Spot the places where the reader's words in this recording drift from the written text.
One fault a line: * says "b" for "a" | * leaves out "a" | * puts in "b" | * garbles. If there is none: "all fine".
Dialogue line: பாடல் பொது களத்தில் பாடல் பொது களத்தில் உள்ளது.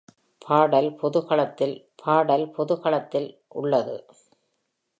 all fine